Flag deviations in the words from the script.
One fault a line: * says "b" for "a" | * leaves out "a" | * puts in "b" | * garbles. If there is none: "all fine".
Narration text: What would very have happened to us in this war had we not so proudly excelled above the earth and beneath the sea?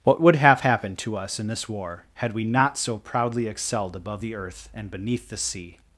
* leaves out "very"